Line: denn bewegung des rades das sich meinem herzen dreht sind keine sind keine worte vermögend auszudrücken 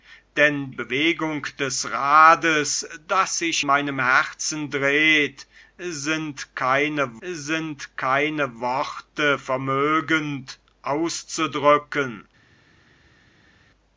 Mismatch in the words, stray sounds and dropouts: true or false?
false